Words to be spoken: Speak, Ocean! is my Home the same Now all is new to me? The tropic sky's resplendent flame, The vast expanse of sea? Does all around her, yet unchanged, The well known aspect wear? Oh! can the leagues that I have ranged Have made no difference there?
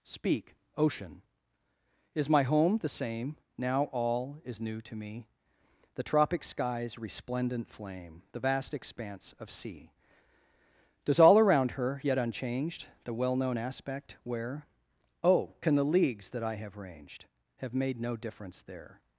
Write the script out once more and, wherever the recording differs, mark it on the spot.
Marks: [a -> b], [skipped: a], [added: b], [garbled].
Speak, Ocean! is my Home the same Now all is new to me? The tropic sky's resplendent flame, The vast expanse of sea? Does all around her, yet unchanged, The well known aspect wear? Oh! can the leagues that I have ranged Have made no difference there?